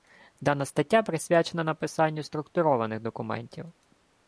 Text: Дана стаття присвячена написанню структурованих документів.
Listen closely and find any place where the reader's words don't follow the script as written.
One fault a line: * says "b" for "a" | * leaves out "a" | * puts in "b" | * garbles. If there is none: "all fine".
all fine